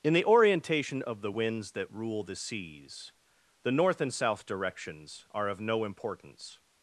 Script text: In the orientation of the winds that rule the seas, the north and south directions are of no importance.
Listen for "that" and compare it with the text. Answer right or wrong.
right